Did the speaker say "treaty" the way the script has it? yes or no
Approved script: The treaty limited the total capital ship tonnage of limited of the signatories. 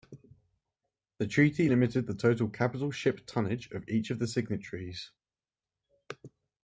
yes